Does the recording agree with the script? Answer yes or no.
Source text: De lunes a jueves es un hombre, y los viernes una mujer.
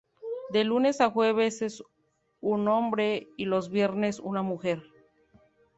yes